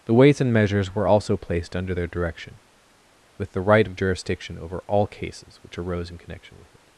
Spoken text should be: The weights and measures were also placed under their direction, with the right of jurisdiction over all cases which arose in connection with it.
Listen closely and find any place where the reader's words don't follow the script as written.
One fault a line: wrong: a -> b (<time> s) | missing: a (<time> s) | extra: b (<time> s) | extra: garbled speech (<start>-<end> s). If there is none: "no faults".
no faults